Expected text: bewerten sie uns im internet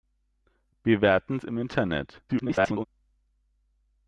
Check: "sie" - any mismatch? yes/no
yes